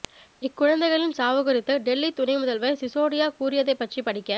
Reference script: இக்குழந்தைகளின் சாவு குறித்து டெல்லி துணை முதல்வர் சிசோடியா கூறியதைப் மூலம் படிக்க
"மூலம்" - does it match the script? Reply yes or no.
no